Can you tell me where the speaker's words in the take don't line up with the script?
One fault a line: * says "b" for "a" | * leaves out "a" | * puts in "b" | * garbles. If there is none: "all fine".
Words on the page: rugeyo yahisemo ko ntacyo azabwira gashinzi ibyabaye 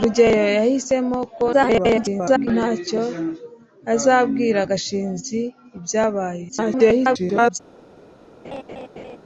* garbles
* garbles